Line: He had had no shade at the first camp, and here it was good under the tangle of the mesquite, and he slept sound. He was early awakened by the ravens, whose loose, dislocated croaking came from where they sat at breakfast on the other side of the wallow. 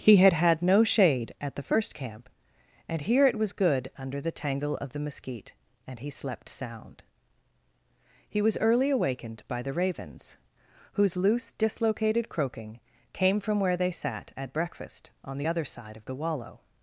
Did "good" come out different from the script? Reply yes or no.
no